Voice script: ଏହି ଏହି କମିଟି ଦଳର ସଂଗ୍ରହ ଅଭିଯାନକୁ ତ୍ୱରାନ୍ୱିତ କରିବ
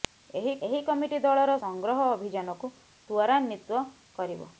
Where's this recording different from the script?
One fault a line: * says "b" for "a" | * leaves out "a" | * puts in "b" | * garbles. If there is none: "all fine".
all fine